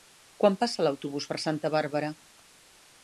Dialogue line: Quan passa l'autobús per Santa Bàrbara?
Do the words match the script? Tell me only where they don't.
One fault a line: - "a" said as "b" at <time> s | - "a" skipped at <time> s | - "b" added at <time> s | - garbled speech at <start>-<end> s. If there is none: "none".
none